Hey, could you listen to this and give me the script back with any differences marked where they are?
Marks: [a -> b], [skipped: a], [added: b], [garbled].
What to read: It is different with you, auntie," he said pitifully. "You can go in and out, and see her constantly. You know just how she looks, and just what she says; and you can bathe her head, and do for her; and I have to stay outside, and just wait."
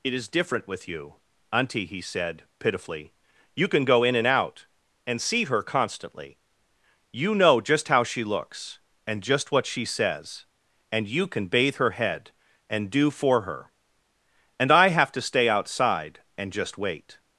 It is different with you, auntie," he said pitifully. "You can go in and out, and see her constantly. You know just how she looks, and just what she says; and you can bathe her head, and do for her; and I have to stay outside, and just wait."